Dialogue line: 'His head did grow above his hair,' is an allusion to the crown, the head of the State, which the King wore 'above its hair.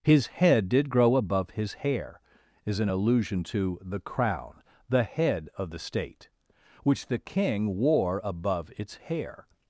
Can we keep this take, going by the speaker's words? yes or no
yes